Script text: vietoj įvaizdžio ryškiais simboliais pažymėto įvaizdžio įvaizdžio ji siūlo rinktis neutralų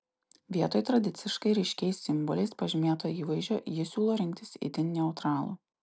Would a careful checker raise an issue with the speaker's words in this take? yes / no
yes